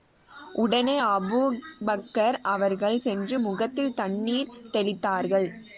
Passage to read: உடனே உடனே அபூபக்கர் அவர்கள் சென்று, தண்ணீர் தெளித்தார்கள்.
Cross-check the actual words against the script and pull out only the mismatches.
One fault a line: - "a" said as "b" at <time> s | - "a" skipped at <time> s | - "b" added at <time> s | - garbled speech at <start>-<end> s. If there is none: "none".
- "உடனே" skipped at 0.9 s
- "முகத்தில்" added at 3.4 s